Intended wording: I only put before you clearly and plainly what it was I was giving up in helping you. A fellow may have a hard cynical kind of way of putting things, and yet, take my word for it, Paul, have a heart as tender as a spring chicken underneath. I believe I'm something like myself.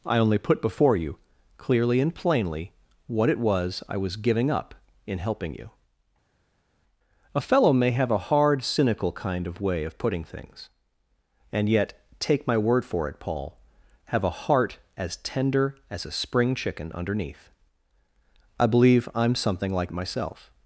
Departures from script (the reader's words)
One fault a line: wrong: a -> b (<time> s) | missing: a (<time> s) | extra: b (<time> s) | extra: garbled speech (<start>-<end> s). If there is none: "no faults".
no faults